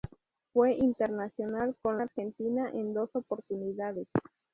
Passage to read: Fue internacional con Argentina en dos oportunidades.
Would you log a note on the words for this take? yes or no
no